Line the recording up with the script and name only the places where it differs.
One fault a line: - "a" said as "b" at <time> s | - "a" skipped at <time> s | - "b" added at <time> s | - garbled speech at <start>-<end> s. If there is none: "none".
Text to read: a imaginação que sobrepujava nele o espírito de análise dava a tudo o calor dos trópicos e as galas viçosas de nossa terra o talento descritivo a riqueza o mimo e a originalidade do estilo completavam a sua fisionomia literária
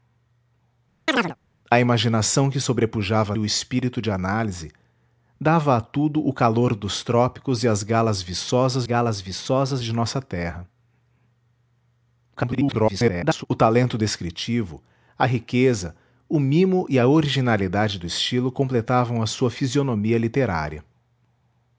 - "nele" skipped at 3.4 s
- "galas viçosas" added at 8.8 s
- garbled speech at 12.4-13.4 s